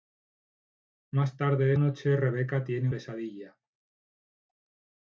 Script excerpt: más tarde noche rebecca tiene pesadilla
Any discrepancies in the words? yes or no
no